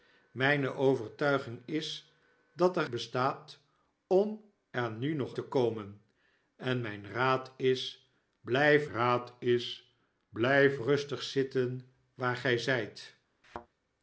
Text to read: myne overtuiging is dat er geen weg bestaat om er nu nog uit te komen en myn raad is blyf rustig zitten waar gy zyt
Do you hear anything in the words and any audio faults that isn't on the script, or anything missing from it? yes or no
yes